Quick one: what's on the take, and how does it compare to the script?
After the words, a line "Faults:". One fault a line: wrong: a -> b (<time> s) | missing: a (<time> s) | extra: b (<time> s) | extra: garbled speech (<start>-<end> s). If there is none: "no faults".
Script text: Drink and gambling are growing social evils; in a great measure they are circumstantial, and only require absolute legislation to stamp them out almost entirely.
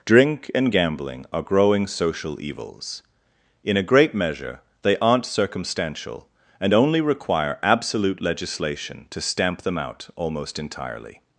Drink and gambling are growing social evils; in a great measure they aren't circumstantial, and only require absolute legislation to stamp them out almost entirely.
Faults:
wrong: are -> aren't (5.0 s)